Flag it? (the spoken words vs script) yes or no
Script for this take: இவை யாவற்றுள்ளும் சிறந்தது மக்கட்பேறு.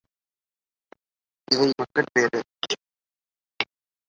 yes